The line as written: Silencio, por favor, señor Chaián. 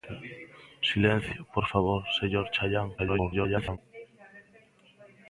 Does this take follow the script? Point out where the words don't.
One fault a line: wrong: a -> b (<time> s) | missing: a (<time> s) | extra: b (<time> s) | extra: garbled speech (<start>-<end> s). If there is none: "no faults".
extra: garbled speech (3.0-3.8 s)